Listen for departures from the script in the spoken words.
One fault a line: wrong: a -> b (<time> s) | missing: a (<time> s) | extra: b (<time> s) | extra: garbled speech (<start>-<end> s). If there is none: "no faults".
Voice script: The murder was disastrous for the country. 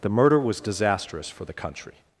no faults